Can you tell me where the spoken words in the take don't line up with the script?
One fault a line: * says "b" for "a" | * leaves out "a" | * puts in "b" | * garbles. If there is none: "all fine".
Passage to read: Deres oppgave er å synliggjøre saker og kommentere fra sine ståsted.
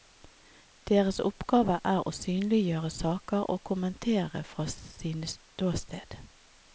all fine